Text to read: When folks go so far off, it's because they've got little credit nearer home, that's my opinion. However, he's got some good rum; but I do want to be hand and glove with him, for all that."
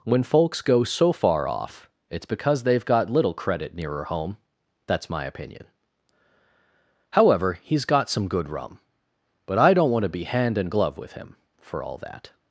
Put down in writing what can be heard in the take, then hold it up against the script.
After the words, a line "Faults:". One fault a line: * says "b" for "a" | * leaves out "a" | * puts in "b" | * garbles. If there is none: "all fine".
When folks go so far off, it's because they've got little credit nearer home, that's my opinion. However, he's got some good rum; but I don't want to be hand and glove with him, for all that."
Faults:
* says "don't" for "do"